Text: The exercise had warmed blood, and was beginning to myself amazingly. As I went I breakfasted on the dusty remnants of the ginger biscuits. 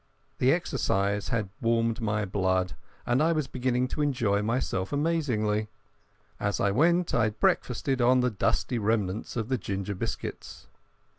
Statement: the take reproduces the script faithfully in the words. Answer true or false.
false